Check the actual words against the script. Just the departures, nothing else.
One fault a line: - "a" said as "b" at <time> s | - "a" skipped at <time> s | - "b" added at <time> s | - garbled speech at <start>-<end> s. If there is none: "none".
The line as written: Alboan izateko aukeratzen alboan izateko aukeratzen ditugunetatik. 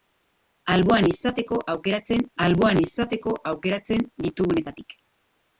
none